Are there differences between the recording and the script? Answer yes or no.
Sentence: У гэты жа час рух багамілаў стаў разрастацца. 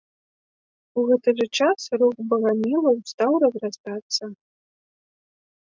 no